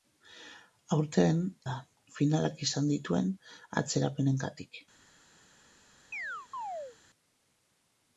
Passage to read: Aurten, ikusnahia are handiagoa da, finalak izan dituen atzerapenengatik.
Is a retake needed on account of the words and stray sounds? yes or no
yes